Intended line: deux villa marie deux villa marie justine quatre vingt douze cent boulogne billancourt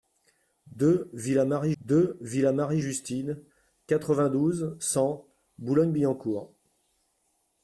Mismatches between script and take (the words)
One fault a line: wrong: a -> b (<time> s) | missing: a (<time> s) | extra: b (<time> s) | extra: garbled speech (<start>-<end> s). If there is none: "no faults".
no faults